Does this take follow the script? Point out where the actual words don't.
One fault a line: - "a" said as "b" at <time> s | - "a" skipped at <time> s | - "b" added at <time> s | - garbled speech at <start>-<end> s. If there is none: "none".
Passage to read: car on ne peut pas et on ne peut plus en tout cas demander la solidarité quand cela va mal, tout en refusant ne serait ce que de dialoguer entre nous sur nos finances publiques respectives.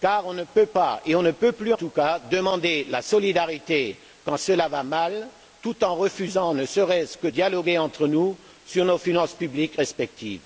- "en" skipped at 1.7 s
- "de" skipped at 7.3 s